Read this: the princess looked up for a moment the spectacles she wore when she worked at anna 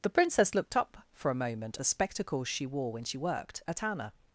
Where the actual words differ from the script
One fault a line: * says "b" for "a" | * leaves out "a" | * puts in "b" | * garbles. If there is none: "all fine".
all fine